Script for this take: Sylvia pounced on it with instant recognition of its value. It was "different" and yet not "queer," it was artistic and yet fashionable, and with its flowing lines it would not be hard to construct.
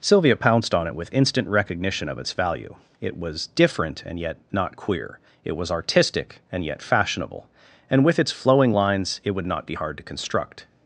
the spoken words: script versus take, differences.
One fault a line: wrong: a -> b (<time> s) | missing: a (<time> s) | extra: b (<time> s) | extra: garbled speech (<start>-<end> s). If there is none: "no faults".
no faults